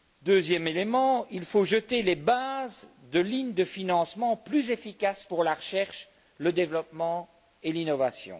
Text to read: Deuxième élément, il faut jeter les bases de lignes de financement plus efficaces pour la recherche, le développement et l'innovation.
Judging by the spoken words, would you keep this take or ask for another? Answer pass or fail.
pass